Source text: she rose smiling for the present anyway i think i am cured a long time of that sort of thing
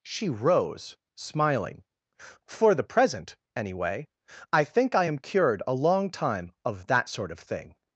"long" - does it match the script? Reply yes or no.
yes